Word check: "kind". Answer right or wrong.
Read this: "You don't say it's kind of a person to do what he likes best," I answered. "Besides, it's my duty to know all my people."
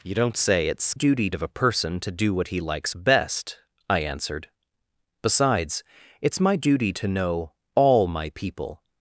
wrong